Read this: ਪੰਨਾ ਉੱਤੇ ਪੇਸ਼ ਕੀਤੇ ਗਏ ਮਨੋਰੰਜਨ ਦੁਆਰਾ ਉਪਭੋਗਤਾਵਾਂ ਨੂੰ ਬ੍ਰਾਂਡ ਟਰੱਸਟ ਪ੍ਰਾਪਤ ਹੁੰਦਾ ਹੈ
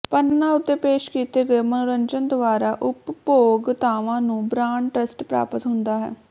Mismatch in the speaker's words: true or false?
false